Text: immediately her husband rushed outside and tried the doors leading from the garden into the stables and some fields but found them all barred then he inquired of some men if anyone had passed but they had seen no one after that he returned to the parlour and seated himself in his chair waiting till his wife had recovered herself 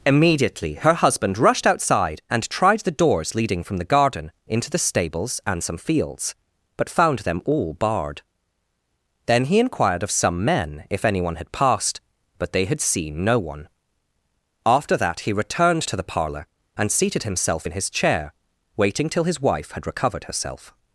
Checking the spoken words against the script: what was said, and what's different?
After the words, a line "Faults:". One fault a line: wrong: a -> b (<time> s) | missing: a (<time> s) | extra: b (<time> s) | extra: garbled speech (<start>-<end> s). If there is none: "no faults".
immediately her husband rushed outside and tried the doors leading from the garden into the stables and some fields but found them all barred then he inquired of some men if anyone had passed but they had seen no one after that he returned to the parlour and seated himself in his chair waiting till his wife had recovered herself
Faults:
no faults